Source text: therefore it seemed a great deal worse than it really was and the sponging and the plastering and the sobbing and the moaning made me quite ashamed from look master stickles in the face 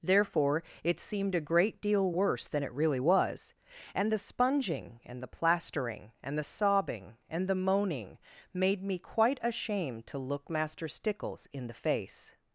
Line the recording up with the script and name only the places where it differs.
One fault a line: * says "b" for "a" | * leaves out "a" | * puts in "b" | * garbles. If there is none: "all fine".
* says "to" for "from"